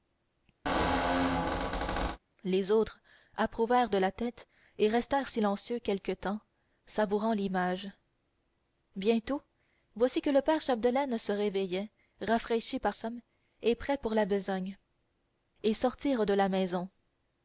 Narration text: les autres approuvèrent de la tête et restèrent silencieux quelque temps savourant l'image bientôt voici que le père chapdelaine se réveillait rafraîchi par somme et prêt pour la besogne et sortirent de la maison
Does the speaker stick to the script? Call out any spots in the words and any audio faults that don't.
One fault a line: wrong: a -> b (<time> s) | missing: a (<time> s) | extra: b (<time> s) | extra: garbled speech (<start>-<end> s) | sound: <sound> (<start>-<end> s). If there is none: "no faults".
sound: squeak (0.6-2.2 s)